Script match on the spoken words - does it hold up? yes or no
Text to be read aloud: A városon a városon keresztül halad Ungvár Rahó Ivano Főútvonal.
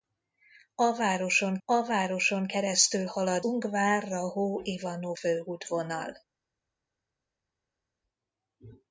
yes